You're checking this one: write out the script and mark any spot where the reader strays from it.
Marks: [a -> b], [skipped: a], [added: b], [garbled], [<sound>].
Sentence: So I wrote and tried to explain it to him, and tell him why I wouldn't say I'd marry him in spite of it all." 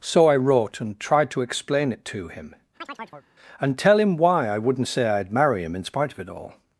So I wrote and tried to explain it to him, [chirp] and tell him why I wouldn't say I'd marry him in spite of it all."